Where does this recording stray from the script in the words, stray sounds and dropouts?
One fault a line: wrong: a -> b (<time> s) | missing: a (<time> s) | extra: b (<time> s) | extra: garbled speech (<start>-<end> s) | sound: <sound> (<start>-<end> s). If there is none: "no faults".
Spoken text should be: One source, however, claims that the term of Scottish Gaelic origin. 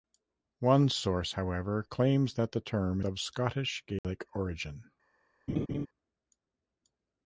sound: dropout (4.0-4.0 s)
sound: laugh (5.5-5.9 s)